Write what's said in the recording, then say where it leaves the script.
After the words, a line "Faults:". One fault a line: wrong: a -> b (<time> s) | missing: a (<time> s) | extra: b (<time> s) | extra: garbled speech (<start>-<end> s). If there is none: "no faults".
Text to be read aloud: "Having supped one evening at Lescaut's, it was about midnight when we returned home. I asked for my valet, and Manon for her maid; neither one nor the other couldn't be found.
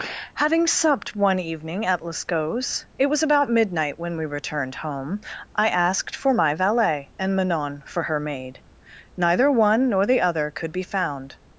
"Having supped one evening at Lescaut's, it was about midnight when we returned home. I asked for my valet, and Manon for her maid; neither one nor the other could be found.
Faults:
wrong: couldn't -> could (10.5 s)